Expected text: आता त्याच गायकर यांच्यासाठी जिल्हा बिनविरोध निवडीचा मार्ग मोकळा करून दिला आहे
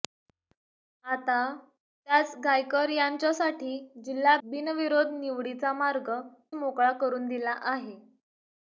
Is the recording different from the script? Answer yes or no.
no